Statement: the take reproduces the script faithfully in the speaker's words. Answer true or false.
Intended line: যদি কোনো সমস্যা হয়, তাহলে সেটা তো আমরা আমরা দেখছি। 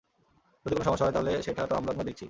true